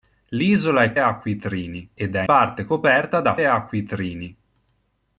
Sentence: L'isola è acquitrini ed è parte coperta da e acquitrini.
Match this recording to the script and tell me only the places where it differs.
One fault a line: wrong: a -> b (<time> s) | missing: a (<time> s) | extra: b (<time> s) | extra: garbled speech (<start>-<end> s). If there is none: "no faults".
no faults